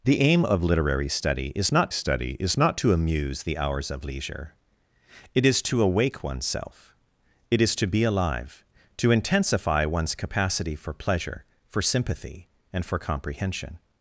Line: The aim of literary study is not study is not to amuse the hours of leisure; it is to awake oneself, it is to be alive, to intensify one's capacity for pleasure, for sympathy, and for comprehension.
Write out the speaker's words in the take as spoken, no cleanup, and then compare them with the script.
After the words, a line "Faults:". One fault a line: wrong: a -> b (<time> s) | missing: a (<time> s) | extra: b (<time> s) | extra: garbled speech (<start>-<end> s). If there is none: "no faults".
The aim of literary study is not study is not to amuse the hours of leisure; it is to awake oneself, it is to be alive, to intensify one's capacity for pleasure, for sympathy, and for comprehension.
Faults:
no faults